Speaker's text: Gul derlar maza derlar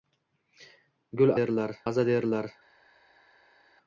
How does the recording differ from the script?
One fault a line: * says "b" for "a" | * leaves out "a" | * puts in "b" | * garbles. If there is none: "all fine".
all fine